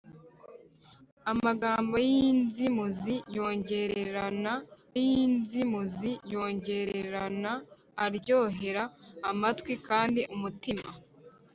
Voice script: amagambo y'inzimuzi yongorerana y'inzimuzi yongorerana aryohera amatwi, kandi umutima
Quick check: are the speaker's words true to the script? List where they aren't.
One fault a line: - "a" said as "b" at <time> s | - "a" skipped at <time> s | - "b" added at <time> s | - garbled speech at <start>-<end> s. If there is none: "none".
none